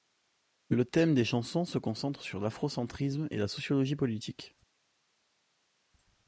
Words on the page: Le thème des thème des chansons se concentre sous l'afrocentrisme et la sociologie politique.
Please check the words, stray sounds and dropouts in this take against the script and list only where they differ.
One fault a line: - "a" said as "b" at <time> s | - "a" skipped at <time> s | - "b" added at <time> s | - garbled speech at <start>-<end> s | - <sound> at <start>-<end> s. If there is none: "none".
- "thème des" skipped at 1.2 s
- "sous" said as "sur" at 2.2 s